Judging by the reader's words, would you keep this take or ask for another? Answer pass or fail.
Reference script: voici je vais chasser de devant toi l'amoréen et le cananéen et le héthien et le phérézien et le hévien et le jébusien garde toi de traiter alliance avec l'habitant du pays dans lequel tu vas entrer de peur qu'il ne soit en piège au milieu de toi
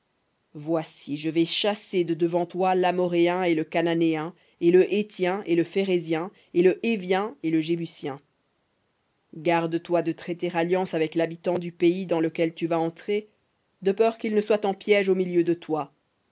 pass